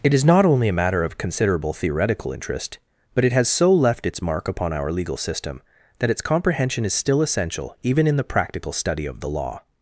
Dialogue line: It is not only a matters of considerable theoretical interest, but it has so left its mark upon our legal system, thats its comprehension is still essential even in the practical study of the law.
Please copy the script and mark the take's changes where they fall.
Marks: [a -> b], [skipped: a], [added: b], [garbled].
It is not only a [matters -> matter] of considerable theoretical interest, but it has so left its mark upon our legal system, [thats -> that] its comprehension is still essential even in the practical study of the law.